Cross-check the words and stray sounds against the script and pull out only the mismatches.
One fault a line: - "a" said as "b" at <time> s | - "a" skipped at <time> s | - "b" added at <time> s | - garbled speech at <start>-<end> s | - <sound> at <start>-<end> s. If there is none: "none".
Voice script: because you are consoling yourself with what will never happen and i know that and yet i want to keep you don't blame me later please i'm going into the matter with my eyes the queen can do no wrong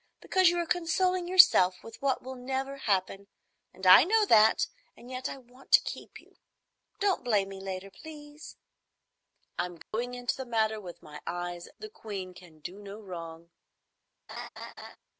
- dropout at 9.8-9.9 s
- laugh at 14.3-15.0 s